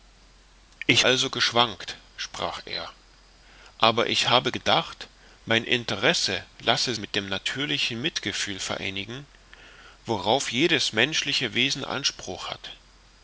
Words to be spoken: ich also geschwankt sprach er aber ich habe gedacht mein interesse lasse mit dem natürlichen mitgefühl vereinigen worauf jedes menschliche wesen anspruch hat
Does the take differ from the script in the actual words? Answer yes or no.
no